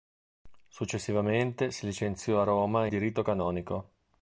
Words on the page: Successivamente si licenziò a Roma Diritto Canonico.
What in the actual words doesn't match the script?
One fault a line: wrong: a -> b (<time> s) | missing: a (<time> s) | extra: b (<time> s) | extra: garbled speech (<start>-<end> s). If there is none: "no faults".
no faults